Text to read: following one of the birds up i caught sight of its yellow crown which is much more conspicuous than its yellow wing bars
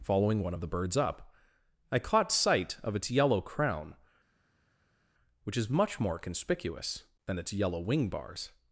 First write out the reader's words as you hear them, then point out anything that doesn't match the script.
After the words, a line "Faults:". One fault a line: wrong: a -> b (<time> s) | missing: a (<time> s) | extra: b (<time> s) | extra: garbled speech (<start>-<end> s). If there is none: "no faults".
following one of the birds up i caught sight of its yellow crown which is much more conspicuous than its yellow wing bars
Faults:
no faults